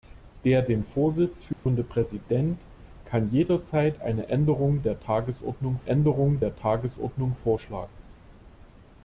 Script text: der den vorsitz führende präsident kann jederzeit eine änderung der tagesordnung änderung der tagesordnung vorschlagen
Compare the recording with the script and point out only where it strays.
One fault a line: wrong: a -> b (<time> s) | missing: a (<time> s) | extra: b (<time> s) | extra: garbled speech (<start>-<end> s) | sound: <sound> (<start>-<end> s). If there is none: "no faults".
sound: dropout (1.5-1.7 s)